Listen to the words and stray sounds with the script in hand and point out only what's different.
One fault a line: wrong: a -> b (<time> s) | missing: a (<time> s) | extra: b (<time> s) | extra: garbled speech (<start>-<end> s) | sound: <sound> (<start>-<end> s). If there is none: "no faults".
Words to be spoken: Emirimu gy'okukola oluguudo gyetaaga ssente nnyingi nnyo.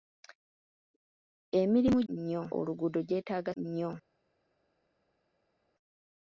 wrong: gy'okukola -> nnyo (2.1 s)
missing: ssente nnyingi (3.5 s)